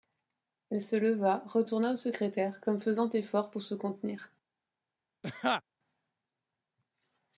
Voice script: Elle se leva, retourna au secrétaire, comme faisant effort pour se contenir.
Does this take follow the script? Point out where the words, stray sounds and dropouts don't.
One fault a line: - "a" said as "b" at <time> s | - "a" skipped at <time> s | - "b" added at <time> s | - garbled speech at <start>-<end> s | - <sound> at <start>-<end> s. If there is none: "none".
- laugh at 5.2-5.6 s